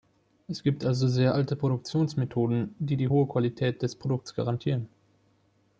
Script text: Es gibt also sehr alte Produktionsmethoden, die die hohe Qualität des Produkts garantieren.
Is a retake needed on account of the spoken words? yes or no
no